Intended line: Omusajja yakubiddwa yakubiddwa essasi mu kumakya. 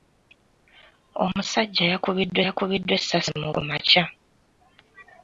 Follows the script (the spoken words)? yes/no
yes